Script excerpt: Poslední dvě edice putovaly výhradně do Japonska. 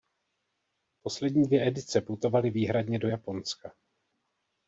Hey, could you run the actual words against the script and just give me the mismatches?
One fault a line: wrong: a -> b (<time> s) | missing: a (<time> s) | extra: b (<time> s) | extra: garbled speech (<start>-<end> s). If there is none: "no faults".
no faults